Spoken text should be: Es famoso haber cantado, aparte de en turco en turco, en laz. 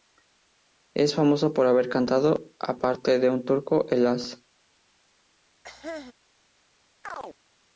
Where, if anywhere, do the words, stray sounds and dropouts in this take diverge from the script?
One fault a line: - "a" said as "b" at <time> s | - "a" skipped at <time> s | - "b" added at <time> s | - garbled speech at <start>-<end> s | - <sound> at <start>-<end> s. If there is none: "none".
- "por" added at 1.5 s
- "turco en" skipped at 4.0 s
- cough at 5.6-6.1 s
- chirp at 7.0-7.4 s